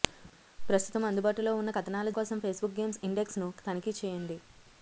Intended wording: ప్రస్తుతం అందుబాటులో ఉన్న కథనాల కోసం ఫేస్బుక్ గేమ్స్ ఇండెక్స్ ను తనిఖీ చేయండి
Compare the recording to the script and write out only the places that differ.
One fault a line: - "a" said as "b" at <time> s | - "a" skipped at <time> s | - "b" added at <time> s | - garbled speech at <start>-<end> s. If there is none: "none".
none